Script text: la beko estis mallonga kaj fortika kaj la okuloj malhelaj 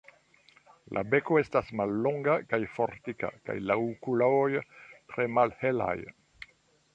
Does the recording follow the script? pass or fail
fail